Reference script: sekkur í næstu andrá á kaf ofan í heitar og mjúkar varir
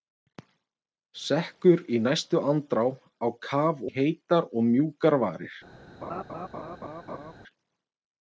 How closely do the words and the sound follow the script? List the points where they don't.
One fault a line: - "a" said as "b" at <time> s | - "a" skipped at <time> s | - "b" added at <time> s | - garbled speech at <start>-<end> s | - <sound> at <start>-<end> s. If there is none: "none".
- "ofan" skipped at 3.8 s
- laugh at 6.0-7.3 s